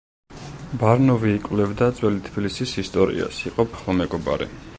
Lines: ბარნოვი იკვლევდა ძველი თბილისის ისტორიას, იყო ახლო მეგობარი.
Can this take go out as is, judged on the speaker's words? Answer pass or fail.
pass